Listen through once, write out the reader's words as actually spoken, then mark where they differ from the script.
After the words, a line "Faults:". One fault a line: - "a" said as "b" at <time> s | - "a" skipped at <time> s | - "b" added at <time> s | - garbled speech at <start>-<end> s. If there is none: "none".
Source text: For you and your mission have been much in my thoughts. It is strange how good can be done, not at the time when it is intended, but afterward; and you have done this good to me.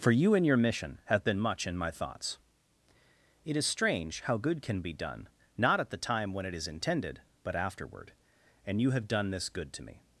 For you and your mission have been much in my thoughts. It is strange how good can be done, not at the time when it is intended, but afterward; and you have done this good to me.
Faults:
none